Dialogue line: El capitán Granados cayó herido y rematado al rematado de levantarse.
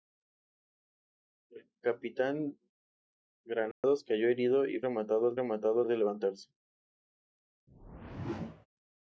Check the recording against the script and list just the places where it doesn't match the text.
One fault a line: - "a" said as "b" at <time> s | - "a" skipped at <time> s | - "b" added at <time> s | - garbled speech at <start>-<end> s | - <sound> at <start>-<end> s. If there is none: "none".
- dropout at 3.7-3.8 s
- whoosh at 7.7-8.7 s